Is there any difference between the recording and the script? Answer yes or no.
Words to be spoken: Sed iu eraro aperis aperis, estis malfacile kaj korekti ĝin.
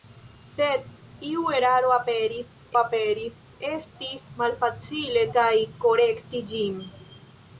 no